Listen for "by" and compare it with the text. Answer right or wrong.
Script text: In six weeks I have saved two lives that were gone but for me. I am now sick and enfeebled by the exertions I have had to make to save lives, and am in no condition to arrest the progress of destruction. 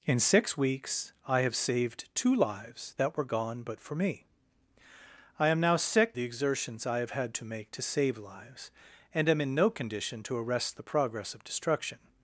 wrong